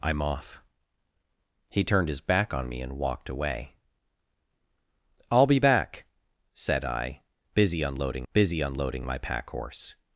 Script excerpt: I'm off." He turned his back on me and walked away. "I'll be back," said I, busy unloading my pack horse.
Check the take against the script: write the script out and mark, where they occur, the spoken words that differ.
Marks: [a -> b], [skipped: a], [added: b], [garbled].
I'm off." He turned his back on me and walked away. "I'll be back," said I, busy unloading [added: busy unloading] my pack horse.